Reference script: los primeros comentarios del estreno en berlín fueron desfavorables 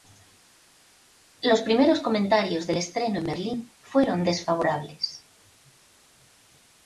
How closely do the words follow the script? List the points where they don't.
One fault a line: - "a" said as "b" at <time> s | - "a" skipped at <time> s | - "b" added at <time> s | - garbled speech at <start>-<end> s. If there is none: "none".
none